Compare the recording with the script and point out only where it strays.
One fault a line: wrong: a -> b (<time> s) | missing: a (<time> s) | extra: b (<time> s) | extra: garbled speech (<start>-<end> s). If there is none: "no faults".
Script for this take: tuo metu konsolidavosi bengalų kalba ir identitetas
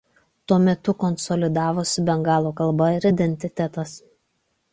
no faults